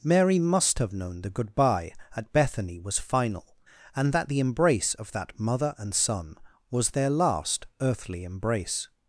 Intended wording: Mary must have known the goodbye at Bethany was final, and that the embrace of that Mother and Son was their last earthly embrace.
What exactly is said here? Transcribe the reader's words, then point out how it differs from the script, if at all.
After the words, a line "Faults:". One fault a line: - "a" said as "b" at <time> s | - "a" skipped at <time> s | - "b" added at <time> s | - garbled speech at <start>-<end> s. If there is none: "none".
Mary must have known the goodbye at Bethany was final, and that the embrace of that Mother and Son was their last earthly embrace.
Faults:
none